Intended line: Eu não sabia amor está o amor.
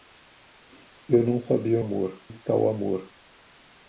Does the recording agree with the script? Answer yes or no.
yes